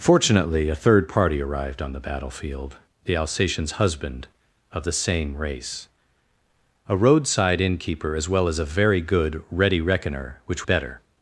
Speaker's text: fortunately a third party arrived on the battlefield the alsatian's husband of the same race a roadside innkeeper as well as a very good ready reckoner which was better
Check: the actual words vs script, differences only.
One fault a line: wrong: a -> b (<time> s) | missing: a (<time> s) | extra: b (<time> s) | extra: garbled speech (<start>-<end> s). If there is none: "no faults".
missing: was (10.6 s)